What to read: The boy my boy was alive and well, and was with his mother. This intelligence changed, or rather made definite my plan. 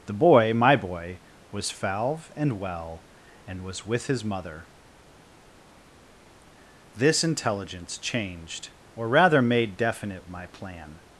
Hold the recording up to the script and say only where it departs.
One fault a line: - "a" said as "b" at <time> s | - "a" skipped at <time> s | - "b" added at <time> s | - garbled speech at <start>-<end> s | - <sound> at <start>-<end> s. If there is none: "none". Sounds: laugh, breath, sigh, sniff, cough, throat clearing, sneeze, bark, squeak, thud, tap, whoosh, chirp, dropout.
- "alive" said as "falve" at 1.7 s